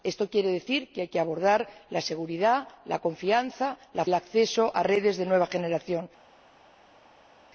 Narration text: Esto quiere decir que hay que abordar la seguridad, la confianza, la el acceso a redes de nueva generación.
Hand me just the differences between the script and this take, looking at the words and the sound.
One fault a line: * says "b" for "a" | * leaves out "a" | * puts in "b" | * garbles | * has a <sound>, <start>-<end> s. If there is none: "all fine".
all fine